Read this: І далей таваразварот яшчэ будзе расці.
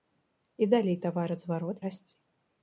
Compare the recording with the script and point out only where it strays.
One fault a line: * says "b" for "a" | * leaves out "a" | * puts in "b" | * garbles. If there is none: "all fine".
* leaves out "яшчэ будзе"